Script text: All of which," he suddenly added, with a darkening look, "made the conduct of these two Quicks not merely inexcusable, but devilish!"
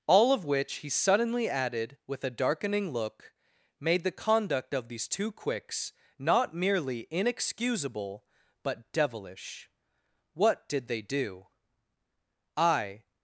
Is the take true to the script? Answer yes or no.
no